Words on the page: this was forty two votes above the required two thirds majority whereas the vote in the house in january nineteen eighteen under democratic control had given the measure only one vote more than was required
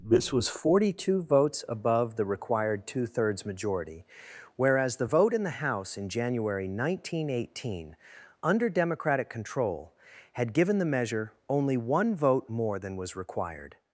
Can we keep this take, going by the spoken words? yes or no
yes